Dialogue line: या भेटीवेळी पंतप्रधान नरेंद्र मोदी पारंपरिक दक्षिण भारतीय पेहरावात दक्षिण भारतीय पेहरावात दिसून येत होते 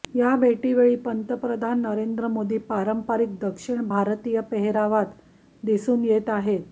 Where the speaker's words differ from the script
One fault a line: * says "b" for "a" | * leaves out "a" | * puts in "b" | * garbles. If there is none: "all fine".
* leaves out "दक्षिण भारतीय पेहरावात"
* says "आहेत" for "होते"